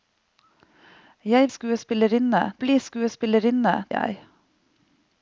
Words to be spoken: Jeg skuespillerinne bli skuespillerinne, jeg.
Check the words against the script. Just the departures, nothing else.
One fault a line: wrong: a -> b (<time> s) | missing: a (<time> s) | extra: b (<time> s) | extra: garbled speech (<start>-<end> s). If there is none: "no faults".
no faults